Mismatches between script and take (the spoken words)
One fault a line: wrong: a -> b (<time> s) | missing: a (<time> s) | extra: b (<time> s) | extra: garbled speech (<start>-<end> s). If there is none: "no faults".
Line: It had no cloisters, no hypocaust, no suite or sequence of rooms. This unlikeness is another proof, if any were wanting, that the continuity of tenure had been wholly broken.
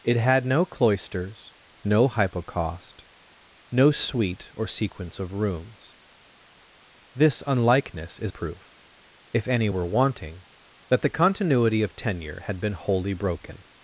missing: another (8.3 s)